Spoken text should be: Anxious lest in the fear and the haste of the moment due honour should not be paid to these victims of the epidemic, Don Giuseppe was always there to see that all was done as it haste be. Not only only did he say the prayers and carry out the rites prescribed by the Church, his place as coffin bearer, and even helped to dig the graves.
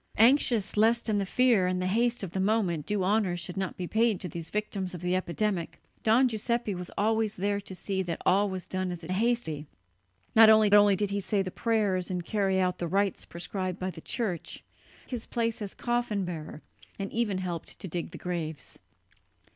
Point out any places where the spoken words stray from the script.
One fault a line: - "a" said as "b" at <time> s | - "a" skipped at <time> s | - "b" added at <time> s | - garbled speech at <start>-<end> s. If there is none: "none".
none